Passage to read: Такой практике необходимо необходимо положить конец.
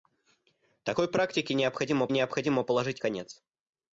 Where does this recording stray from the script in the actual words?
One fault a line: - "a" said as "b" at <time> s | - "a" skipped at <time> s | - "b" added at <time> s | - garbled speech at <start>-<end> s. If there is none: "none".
none